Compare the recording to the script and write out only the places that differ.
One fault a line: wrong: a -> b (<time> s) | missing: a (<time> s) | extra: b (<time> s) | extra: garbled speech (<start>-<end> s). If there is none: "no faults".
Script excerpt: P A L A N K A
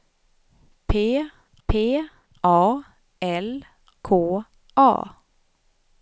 extra: p (1.7 s)
missing: A N (3.6 s)